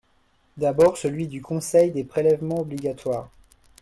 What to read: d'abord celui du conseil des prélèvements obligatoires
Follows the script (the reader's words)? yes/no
yes